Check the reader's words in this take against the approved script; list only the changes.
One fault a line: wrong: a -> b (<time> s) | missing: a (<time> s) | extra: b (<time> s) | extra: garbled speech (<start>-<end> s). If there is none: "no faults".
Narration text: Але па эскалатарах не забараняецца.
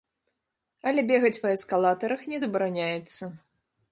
extra: бегаць (1.1 s)